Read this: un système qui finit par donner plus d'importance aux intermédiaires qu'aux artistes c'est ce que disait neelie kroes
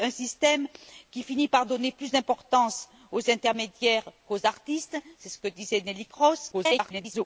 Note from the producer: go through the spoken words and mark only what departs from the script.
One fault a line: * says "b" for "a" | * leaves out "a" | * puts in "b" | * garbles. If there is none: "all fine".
* garbles